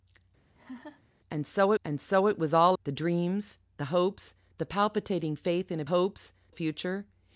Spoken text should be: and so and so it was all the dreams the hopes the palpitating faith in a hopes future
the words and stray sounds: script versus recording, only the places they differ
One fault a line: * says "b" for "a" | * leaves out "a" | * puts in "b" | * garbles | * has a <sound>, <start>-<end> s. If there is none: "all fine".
* has a laugh, 0.5-1.0 s